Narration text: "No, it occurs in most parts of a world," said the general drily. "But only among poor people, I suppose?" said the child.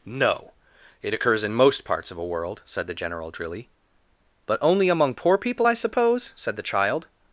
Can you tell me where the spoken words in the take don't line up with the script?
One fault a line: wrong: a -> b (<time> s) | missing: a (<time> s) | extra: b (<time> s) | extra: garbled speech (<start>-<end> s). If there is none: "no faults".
no faults